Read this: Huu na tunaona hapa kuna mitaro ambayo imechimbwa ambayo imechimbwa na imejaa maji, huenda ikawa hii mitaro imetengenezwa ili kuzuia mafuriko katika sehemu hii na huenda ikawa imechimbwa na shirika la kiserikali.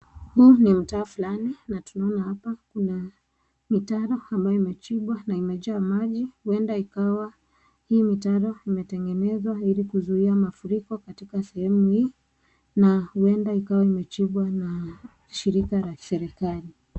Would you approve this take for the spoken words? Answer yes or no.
no